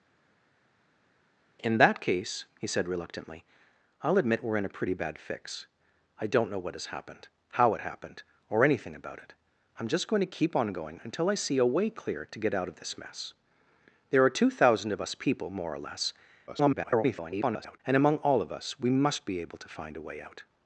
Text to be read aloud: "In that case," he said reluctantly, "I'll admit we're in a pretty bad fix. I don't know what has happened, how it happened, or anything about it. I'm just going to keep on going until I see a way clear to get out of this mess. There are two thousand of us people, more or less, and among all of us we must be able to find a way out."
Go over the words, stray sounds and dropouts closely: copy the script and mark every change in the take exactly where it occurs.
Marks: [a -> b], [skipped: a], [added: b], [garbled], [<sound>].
"In that case," he said reluctantly, "I'll admit we're in a pretty bad fix. I don't know what has happened, how it happened, or anything about it. I'm just going to keep on going until I see a way clear to get out of this mess. There are two thousand of us people, more or less, [garbled] and among all of us we must be able to find a way out."